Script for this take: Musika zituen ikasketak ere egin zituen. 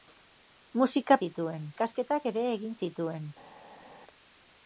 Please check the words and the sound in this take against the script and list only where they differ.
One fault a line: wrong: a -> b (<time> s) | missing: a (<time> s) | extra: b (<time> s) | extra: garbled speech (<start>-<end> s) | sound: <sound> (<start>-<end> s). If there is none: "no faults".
no faults